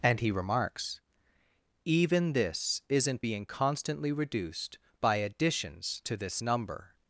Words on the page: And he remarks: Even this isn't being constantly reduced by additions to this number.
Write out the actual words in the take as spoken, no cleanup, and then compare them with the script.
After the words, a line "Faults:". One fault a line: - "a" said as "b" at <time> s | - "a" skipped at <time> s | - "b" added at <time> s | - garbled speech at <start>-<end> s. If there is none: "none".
And he remarks: Even this isn't being constantly reduced by additions to this number.
Faults:
none